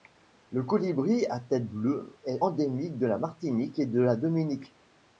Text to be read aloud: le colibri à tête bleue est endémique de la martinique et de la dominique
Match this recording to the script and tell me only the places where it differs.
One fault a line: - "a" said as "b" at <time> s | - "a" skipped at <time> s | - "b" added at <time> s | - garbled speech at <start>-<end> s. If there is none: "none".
none